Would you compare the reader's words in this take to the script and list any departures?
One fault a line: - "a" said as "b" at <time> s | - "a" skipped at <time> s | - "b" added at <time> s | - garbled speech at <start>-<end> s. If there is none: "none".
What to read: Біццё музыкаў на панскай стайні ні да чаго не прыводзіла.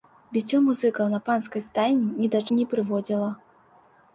- "чаго" skipped at 2.4 s